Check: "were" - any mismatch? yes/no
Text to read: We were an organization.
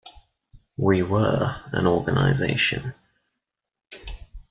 no